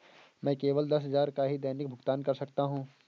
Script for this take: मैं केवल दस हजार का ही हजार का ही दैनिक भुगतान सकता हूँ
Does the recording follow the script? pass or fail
fail